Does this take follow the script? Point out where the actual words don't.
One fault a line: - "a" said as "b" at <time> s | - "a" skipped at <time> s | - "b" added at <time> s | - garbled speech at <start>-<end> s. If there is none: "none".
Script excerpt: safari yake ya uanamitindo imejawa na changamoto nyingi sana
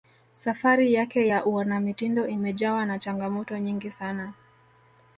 none